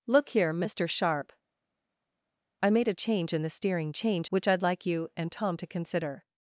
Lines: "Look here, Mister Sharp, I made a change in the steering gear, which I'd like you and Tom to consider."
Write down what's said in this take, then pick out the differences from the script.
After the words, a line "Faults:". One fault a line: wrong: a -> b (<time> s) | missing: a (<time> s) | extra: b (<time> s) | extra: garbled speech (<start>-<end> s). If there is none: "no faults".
"Look here, Mister Sharp, I made a change in the steering change, which I'd like you and Tom to consider."
Faults:
wrong: gear -> change (3.9 s)